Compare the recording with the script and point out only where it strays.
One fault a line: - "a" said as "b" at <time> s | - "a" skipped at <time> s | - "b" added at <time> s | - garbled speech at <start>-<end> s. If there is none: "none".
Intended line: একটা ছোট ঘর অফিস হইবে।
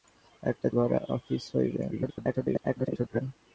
- "ছোট" skipped at 0.7 s
- garbled speech at 1.9-3.2 s